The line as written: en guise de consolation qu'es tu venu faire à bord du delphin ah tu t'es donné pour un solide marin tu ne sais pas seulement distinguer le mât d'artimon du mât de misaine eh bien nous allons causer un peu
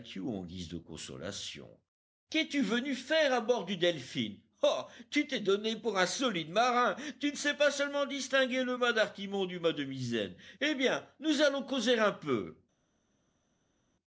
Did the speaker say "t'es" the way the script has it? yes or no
yes